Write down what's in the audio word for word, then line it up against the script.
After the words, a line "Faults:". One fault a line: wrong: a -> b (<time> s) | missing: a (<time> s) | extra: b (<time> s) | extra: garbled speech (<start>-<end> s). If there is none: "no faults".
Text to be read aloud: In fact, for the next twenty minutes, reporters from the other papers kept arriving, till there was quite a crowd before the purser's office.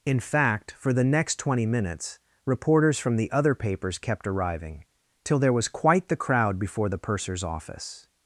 In fact, for the next twenty minutes, reporters from the other papers kept arriving, till there was quite the crowd before the purser's office.
Faults:
wrong: a -> the (6.1 s)